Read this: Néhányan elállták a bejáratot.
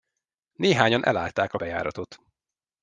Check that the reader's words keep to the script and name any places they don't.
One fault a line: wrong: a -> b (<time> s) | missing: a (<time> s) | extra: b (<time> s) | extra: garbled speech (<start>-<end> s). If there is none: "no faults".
no faults